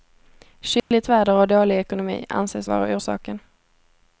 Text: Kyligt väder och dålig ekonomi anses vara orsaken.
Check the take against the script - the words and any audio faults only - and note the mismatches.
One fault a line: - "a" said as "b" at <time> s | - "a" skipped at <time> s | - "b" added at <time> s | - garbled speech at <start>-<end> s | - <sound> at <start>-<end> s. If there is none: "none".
- dropout at 0.8-0.9 s